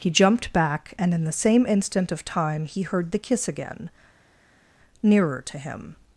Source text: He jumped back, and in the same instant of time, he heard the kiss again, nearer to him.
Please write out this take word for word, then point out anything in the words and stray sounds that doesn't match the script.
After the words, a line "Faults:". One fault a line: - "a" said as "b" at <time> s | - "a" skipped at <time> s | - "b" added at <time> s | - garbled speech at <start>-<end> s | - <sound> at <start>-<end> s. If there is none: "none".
He jumped back, and in the same instant of time, he heard the kiss again, nearer to him.
Faults:
none